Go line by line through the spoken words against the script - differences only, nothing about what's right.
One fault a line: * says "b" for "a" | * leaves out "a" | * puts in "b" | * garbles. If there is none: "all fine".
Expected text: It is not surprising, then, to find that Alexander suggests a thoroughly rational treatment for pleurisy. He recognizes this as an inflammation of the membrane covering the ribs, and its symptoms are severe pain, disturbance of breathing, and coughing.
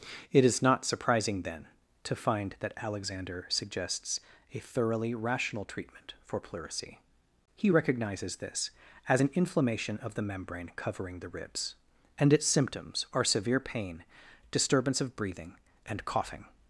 all fine